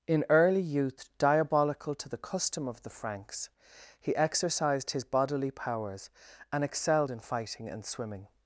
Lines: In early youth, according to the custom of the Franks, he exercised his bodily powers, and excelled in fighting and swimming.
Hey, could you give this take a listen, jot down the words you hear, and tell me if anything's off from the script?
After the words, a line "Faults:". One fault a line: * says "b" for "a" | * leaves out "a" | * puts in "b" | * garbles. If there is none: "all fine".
In early youth, diabolical to the custom of the Franks, he exercised his bodily powers, and excelled in fighting and swimming.
Faults:
* says "diabolical" for "according"